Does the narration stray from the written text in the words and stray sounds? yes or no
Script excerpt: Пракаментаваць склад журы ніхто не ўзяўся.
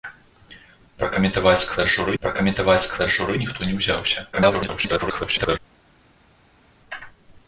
yes